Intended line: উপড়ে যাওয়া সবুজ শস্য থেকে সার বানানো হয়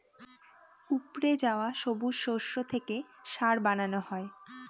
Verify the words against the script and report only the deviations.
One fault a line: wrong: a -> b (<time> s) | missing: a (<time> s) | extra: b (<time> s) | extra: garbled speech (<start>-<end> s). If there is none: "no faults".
no faults